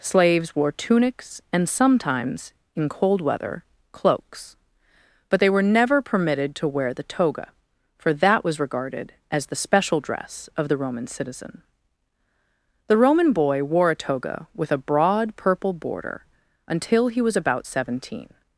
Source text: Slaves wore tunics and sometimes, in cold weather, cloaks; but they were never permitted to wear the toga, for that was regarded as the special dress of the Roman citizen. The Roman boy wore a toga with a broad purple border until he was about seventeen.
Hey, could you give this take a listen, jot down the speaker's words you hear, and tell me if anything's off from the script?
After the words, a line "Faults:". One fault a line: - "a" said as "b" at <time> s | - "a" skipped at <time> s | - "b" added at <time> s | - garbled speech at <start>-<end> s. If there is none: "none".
Slaves wore tunics and sometimes, in cold weather, cloaks; but they were never permitted to wear the toga, for that was regarded as the special dress of the Roman citizen. The Roman boy wore a toga with a broad purple border until he was about seventeen.
Faults:
none